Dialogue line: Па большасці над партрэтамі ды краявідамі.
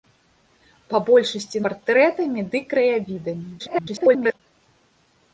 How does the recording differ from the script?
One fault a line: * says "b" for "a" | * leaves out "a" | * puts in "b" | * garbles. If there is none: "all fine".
* leaves out "над"
* garbles